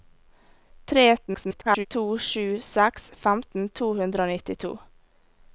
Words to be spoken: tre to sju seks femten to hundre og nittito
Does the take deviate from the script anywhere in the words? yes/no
yes